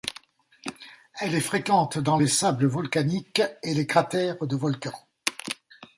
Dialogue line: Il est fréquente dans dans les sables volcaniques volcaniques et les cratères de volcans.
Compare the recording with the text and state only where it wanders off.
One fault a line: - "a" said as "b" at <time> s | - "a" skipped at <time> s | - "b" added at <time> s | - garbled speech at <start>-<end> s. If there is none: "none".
- "Il" said as "Elle" at 1.2 s
- "dans" skipped at 2.2 s
- "volcaniques" skipped at 3.4 s